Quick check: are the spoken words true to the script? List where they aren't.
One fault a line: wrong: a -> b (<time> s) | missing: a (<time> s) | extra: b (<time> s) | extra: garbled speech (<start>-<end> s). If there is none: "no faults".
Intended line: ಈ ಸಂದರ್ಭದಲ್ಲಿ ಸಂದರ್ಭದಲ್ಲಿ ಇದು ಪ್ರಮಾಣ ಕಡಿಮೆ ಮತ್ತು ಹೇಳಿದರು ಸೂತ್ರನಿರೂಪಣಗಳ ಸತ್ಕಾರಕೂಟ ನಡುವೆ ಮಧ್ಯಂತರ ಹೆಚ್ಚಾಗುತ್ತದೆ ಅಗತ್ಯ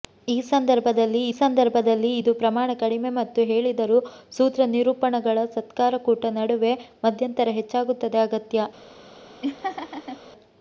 no faults